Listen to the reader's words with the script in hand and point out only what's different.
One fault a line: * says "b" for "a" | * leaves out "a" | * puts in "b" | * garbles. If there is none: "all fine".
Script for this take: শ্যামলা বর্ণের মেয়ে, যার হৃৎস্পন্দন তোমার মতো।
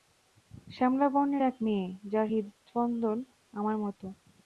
* puts in "এক"
* says "আমার" for "তোমার"